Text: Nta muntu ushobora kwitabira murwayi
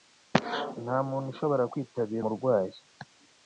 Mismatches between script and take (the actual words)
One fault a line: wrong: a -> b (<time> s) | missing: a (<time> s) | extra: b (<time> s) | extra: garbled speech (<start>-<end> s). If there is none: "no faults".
no faults